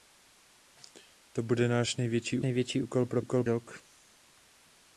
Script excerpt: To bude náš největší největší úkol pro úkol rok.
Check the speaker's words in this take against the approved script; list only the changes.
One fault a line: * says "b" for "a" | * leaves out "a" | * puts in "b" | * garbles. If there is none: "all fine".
all fine